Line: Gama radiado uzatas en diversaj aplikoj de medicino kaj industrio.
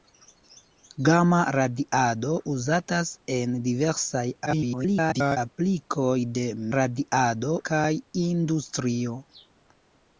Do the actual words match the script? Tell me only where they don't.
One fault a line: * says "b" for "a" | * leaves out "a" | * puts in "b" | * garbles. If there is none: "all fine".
* garbles
* says "radiado" for "medicino"